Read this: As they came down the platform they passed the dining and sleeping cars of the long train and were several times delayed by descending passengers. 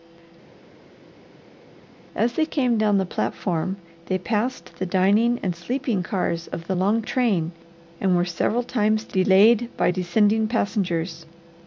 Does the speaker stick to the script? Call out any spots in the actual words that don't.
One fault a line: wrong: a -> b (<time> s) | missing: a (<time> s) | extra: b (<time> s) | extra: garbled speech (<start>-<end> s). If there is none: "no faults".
no faults